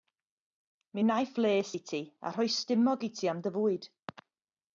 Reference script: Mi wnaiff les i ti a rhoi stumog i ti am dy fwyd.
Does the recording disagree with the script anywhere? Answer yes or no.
no